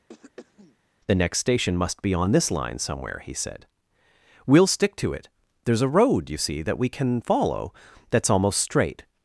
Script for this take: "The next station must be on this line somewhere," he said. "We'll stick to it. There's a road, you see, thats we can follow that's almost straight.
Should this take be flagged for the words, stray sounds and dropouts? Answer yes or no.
yes